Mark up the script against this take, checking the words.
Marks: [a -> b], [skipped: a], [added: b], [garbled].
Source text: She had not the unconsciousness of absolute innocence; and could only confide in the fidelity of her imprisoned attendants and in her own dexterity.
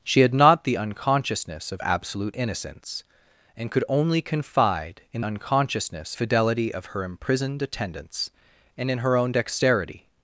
She had not the unconsciousness of absolute innocence; and could only confide in [the -> unconsciousness] fidelity of her imprisoned attendants and in her own dexterity.